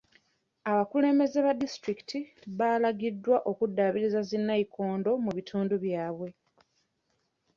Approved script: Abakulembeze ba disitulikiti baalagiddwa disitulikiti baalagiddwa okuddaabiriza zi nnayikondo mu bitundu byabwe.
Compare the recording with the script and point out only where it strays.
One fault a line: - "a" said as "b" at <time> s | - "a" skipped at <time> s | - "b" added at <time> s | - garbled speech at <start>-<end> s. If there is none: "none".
- "disitulikiti baalagiddwa" skipped at 3.4 s